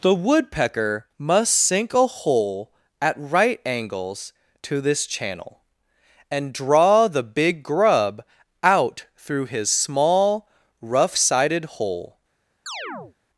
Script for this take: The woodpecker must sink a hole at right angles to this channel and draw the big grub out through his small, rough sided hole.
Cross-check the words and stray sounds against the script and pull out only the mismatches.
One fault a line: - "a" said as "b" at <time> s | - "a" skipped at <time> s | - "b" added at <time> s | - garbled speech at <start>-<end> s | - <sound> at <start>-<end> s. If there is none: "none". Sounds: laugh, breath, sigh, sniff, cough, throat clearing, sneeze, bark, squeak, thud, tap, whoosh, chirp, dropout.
- chirp at 12.7-13.1 s